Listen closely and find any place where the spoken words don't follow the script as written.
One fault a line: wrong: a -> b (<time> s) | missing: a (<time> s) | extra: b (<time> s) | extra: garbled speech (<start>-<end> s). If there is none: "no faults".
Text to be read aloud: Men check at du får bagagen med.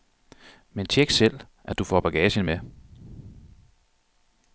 extra: selv (1.1 s)